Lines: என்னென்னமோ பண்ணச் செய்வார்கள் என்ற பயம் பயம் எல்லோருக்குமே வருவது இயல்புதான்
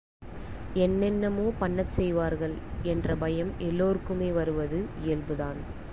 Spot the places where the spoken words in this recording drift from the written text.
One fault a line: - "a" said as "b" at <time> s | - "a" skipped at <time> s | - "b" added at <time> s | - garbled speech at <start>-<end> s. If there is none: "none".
- "பயம்" skipped at 3.5 s